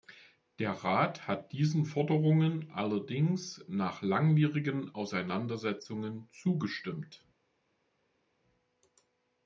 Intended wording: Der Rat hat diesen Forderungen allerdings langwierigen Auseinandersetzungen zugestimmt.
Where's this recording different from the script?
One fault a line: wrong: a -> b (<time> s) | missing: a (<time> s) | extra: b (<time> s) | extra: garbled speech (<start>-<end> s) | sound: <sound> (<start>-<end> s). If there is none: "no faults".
extra: nach (3.7 s)